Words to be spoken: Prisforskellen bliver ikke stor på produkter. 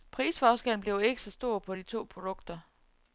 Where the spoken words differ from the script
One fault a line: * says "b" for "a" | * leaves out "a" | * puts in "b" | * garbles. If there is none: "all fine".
* puts in "så"
* puts in "de to"